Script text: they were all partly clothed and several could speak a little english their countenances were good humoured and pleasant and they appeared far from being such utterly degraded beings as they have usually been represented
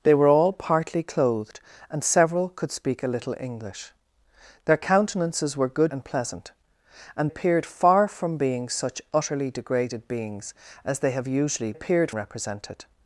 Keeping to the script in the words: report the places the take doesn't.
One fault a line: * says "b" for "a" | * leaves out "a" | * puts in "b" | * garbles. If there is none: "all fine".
* leaves out "humoured"
* leaves out "they"
* says "appeared" for "been"